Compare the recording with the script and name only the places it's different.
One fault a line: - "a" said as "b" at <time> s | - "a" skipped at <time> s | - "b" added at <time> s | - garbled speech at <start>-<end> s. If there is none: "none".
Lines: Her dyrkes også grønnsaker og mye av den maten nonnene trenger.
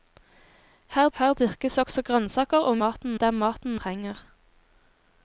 - "her" added at 1.2 s
- "mye" said as "maten" at 2.8 s
- "nonnene" skipped at 3.8 s